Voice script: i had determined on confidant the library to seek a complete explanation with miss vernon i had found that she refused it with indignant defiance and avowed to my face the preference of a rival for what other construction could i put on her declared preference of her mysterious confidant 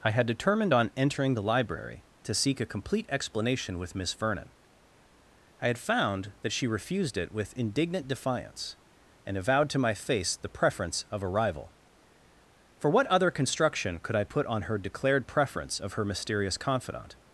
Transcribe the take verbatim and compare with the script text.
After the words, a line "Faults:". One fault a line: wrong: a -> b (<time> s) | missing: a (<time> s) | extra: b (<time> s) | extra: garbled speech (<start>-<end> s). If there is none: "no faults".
i had determined on entering the library to seek a complete explanation with miss vernon i had found that she refused it with indignant defiance and avowed to my face the preference of a rival for what other construction could i put on her declared preference of her mysterious confidant
Faults:
wrong: confidant -> entering (1.0 s)